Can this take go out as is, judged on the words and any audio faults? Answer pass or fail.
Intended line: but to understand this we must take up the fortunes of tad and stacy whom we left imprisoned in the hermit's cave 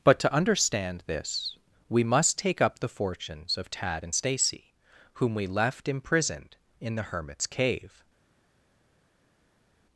pass